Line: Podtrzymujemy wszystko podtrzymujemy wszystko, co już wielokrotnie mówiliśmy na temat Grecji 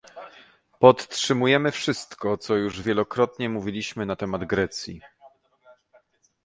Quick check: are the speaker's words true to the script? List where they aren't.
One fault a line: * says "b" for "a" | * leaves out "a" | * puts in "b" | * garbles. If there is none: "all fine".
* leaves out "podtrzymujemy wszystko"